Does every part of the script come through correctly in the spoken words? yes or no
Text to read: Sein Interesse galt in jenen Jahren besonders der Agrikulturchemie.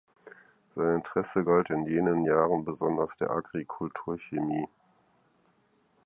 yes